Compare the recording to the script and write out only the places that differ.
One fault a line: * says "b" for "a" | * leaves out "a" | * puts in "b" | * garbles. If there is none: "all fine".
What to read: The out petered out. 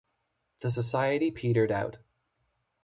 * says "society" for "out"